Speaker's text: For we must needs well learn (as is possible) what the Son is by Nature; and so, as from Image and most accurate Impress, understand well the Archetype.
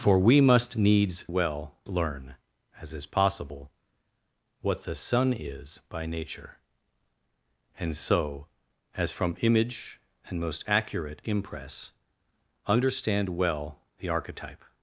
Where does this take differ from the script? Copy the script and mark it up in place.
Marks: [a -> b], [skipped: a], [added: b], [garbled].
For we must needs well learn (as is possible) what the Son is by Nature; and so, as from Image and most accurate Impress, understand well the Archetype.